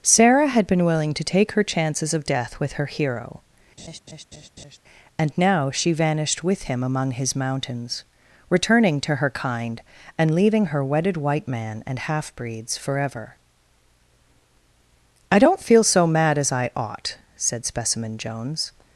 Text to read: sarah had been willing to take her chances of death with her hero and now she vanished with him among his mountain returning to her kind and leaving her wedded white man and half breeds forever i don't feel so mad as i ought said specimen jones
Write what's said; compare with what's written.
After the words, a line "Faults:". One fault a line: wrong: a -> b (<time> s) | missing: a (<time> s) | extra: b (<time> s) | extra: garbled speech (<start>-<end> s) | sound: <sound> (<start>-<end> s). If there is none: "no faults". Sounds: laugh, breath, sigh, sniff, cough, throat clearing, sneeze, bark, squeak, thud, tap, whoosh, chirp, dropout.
sarah had been willing to take her chances of death with her hero and now she vanished with him among his mountains returning to her kind and leaving her wedded white man and half breeds forever i don't feel so mad as i ought said specimen jones
Faults:
sound: laugh (3.8-4.8 s)
wrong: mountain -> mountains (7.4 s)